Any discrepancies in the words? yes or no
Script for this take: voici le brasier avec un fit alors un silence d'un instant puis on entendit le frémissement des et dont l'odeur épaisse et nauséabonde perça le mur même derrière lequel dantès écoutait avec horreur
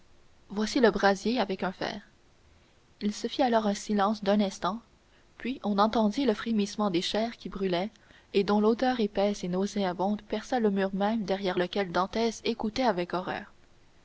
yes